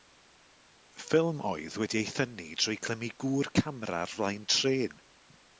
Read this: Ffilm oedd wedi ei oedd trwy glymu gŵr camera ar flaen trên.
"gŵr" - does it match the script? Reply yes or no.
yes